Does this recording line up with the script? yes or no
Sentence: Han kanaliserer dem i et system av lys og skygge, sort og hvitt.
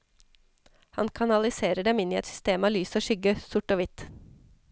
no